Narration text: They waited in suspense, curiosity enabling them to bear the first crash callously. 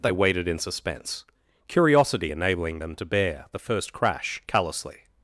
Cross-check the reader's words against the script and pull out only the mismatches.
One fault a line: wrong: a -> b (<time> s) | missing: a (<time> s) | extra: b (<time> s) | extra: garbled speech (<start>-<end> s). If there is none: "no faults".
no faults